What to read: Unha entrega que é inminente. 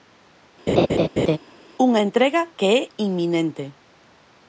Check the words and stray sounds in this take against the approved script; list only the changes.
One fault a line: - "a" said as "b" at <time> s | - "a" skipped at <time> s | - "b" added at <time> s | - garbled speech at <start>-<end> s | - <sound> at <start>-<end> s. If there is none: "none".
- laugh at 0.7-1.4 s